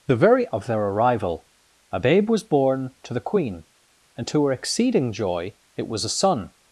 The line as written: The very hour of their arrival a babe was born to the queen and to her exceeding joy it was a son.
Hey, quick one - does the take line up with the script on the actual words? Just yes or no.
no